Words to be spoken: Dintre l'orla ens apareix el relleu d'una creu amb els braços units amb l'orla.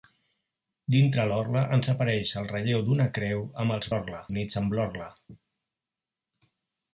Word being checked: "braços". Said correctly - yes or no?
no